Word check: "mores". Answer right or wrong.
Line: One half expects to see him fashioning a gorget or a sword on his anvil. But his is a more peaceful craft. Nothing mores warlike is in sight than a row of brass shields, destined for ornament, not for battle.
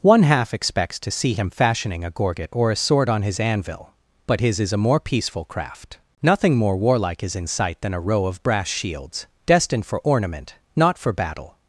wrong